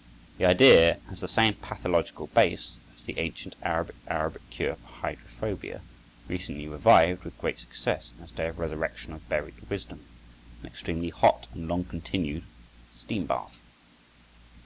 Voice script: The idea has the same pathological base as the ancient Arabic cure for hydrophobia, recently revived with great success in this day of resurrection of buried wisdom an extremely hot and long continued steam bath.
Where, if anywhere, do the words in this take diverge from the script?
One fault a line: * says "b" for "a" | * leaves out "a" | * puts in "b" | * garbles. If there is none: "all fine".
* puts in "Arabic"